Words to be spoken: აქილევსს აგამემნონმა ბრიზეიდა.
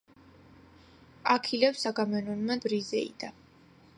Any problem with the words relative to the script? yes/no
no